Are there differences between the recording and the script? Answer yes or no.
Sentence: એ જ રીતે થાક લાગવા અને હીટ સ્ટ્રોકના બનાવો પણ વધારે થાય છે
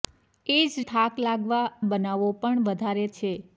yes